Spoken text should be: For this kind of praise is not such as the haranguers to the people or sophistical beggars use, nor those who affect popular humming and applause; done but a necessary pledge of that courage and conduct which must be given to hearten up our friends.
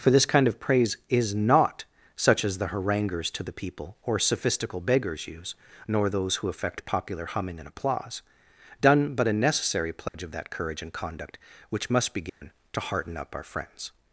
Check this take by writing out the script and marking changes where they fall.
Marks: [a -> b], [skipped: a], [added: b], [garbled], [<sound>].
For this kind of praise is not such as the haranguers to the people or sophistical beggars use, nor those who affect popular humming and applause; done but a necessary pledge [dropout] of that courage and conduct which must be given [dropout] to hearten up our friends.